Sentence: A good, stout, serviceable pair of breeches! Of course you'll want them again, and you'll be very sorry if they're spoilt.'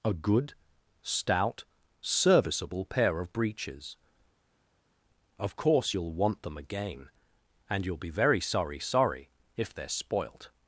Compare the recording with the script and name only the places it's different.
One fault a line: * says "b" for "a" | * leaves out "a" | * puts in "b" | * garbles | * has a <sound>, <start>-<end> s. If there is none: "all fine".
* puts in "sorry"